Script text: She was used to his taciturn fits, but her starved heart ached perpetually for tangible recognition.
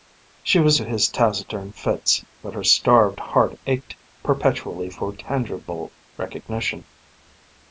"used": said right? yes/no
no